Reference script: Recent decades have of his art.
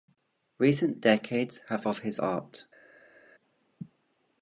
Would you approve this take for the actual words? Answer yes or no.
yes